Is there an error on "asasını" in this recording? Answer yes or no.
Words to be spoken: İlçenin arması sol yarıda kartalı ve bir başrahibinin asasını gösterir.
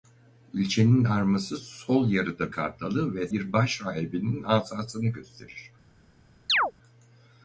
no